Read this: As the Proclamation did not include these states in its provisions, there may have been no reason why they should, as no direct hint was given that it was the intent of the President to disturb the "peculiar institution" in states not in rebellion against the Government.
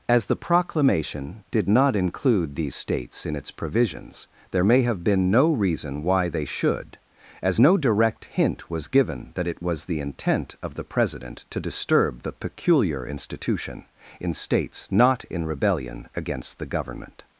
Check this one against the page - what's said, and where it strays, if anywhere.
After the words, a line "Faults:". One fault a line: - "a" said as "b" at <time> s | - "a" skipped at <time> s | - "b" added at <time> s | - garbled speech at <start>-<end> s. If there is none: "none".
As the Proclamation did not include these states in its provisions, there may have been no reason why they should, as no direct hint was given that it was the intent of the President to disturb the "peculiar institution" in states not in rebellion against the Government.
Faults:
none